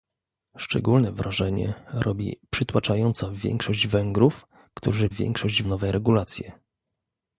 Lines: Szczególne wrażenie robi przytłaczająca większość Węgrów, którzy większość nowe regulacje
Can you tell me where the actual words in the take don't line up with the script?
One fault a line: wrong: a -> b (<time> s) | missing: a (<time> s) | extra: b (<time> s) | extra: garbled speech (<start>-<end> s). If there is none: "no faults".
no faults